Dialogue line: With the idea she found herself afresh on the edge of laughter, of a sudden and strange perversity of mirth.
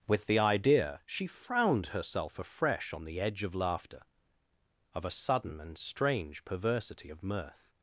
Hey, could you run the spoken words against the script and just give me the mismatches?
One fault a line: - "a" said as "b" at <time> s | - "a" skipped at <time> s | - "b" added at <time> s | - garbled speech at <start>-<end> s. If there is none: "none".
- "found" said as "frowned" at 1.3 s